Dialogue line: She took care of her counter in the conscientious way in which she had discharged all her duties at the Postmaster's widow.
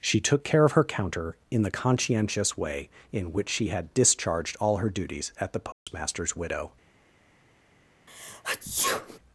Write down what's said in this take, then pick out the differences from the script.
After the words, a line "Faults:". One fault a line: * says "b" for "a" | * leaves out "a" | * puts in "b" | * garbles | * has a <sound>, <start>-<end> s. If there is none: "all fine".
She took care of her counter in the conscientious way in which she had discharged all her duties at the Postmaster's widow.
Faults:
* has a dropout, 5.7-5.9 s
* has a sneeze, 8.1-9.2 s